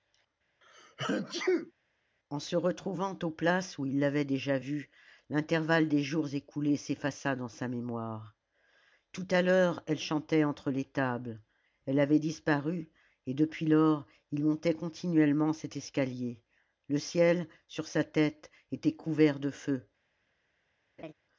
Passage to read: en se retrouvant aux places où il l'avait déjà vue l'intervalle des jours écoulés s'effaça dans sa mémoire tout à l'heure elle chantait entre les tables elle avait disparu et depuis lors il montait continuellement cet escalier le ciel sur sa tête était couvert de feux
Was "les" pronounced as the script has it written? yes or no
yes